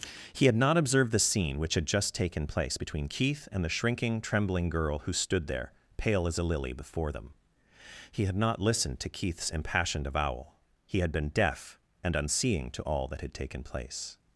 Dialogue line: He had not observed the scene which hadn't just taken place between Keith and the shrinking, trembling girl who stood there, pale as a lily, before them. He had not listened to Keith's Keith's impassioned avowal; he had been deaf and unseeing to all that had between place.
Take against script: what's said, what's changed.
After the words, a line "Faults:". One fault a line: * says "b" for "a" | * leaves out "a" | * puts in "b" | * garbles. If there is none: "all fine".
He had not observed the scene which had just taken place between Keith and the shrinking, trembling girl who stood there, pale as a lily, before them. He had not listened to Keith's impassioned avowal; he had been deaf and unseeing to all that had taken place.
Faults:
* says "had" for "hadn't"
* leaves out "Keith's"
* says "taken" for "between"